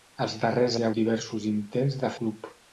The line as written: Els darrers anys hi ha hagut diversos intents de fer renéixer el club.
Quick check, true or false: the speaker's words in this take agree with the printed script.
false